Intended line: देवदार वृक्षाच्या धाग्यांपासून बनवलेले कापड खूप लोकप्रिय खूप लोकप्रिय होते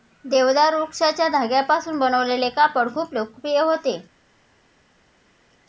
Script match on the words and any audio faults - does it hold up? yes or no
no